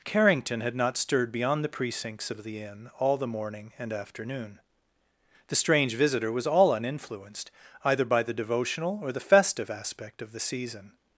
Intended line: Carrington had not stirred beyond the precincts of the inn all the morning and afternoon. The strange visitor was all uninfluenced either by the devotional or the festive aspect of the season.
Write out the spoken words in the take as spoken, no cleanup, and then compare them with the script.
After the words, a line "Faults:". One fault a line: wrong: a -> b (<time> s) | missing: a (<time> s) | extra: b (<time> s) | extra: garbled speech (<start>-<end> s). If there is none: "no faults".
Carrington had not stirred beyond the precincts of the inn all the morning and afternoon. The strange visitor was all uninfluenced either by the devotional or the festive aspect of the season.
Faults:
no faults